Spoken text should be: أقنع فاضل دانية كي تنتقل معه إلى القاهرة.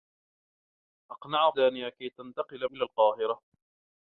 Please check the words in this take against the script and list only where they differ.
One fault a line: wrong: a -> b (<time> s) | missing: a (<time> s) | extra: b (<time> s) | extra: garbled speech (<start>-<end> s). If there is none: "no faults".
missing: فاضل (1.5 s)
missing: معه (2.7 s)